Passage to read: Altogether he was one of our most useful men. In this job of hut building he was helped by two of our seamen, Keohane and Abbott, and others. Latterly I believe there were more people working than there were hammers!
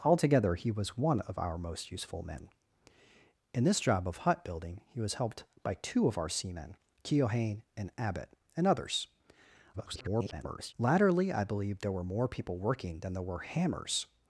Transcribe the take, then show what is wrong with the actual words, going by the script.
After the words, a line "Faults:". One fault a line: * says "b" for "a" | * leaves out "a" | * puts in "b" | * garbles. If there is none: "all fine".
Altogether he was one of our most useful men. In this job of hut building he was helped by two of our seamen, Keohane and Abbott, and others. [garbled] Latterly I believe there were more people working than there were hammers!
Faults:
* garbles